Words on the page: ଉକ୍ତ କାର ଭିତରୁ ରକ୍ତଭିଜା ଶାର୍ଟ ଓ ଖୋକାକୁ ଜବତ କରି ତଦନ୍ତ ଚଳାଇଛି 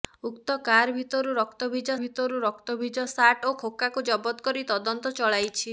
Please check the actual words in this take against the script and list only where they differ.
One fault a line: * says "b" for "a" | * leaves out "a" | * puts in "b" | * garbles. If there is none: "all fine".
* puts in "ଭିତରୁ ରକ୍ତଭିଜା"